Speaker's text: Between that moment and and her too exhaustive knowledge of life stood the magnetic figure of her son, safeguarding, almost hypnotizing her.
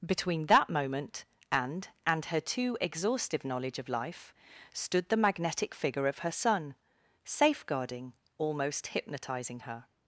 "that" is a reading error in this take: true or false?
false